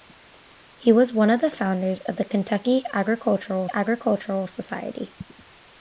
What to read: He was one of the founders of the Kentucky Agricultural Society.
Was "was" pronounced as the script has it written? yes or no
yes